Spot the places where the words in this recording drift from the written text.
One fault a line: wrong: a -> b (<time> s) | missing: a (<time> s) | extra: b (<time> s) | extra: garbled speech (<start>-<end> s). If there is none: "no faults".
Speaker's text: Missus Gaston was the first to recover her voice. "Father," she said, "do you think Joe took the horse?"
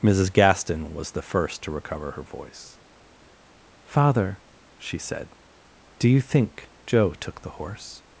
no faults